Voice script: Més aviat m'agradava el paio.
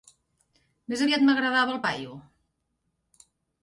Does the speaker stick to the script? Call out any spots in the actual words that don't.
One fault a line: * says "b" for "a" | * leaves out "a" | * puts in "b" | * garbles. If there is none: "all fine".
all fine